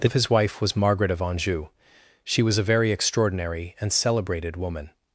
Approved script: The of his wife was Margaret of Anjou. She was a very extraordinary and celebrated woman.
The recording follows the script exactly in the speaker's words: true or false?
true